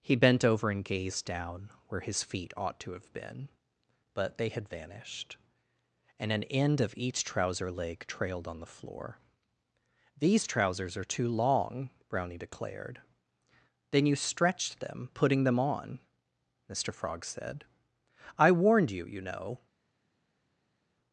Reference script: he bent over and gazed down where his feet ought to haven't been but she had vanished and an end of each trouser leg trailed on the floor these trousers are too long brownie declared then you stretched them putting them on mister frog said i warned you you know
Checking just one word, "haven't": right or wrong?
wrong